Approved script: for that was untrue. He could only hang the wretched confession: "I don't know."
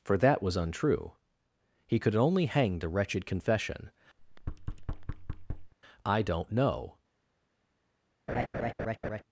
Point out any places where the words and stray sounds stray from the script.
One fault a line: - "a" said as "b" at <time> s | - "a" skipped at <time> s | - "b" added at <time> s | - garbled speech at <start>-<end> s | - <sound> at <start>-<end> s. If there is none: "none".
- thud at 4.2-5.7 s
- laugh at 8.3-9.2 s